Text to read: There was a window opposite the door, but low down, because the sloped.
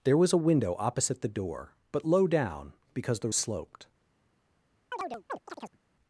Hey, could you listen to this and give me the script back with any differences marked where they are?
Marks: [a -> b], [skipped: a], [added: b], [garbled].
There was a window opposite the door, but low down, because the sloped.